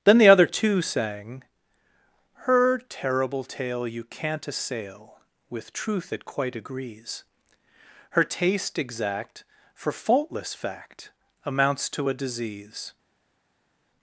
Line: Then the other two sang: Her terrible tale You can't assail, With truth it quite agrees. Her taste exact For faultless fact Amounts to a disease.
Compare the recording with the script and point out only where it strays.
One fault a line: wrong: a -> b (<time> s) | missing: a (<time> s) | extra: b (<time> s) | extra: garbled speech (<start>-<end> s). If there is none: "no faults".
no faults